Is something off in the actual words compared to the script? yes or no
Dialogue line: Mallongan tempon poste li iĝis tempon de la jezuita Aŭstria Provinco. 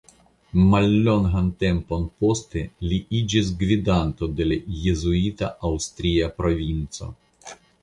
yes